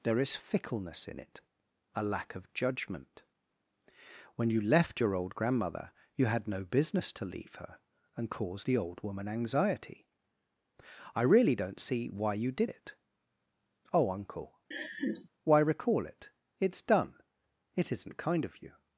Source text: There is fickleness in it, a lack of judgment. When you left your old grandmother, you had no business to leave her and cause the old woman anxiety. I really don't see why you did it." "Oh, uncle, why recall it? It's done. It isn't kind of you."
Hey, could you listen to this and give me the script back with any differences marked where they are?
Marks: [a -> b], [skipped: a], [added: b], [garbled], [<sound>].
There is fickleness in it, a lack of judgment. When you left your old grandmother, you had no business to leave her and cause the old woman anxiety. I really don't see why you did it." "Oh, uncle, [laugh] why recall it? It's done. It isn't kind of you."